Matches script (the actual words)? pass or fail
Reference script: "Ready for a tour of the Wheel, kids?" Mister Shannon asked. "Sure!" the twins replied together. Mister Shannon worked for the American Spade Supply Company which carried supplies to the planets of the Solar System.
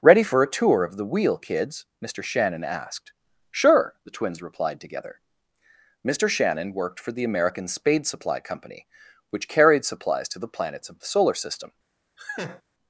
pass